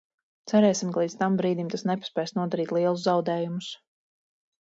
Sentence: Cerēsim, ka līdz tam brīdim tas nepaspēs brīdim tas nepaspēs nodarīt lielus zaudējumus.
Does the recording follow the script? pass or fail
fail